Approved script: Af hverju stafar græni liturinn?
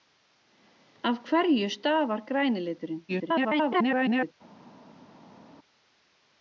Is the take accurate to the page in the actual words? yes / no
no